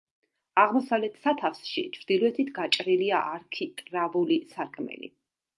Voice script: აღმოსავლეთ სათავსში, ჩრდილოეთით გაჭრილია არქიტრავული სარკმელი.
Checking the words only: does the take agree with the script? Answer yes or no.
yes